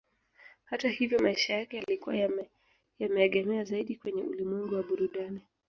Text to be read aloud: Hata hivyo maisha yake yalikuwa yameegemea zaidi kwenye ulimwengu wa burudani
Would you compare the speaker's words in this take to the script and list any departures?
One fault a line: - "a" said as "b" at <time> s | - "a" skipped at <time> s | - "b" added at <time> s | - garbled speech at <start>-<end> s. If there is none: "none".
none